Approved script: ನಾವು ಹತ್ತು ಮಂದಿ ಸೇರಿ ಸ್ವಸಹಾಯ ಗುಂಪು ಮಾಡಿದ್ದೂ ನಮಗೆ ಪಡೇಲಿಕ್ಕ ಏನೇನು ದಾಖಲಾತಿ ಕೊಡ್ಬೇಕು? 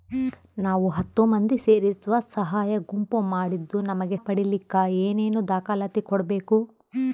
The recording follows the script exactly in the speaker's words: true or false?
true